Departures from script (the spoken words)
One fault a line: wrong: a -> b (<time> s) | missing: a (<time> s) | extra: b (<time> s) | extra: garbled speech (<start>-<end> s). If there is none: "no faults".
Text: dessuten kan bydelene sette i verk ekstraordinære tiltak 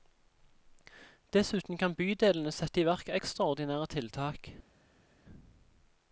no faults